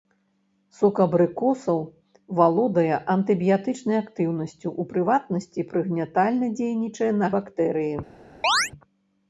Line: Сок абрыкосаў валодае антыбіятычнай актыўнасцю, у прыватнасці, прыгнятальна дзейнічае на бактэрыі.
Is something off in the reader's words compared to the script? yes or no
no